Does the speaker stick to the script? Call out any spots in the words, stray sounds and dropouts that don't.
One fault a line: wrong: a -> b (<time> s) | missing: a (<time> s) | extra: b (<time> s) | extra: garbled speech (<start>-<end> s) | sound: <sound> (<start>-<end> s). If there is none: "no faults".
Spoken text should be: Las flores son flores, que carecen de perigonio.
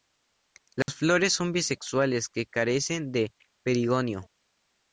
sound: dropout (0.8-0.9 s)
wrong: flores -> bisexuales (1.5 s)